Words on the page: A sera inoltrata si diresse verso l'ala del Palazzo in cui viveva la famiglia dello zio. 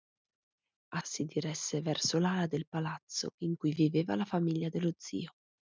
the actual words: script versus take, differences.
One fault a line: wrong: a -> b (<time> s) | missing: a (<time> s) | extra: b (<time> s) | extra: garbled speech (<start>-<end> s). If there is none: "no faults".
missing: sera inoltrata (1.0 s)